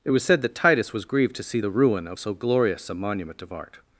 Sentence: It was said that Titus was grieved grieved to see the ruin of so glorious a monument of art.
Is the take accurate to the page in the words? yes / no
no